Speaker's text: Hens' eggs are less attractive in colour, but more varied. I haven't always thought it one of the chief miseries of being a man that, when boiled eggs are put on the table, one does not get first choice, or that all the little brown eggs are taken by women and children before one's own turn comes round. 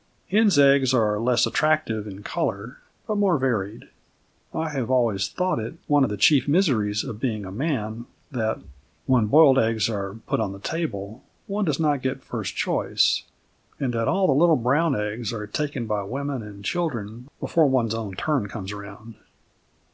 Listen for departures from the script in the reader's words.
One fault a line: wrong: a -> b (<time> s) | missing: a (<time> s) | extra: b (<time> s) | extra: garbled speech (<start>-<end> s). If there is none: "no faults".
wrong: haven't -> have (4.7 s)
wrong: or -> and (13.8 s)